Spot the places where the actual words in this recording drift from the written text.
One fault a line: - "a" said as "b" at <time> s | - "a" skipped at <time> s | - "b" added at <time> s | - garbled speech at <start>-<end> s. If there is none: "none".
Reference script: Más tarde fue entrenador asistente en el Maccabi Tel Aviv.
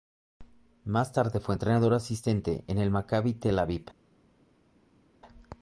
none